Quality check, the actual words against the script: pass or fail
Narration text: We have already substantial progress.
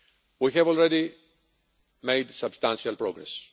fail